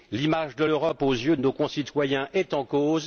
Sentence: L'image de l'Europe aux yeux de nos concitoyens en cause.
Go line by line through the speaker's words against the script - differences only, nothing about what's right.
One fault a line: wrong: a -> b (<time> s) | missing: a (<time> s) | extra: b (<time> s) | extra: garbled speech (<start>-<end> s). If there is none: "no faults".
extra: est (2.3 s)